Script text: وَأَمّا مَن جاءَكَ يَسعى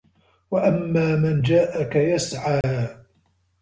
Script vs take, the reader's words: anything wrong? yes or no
no